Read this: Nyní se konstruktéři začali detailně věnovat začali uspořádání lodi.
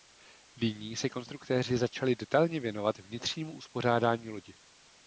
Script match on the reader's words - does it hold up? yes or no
no